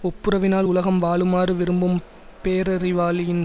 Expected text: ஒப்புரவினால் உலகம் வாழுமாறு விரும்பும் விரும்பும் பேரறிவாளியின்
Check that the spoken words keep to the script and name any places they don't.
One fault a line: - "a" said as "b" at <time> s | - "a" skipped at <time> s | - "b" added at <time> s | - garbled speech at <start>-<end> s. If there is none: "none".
- "விரும்பும்" skipped at 2.0 s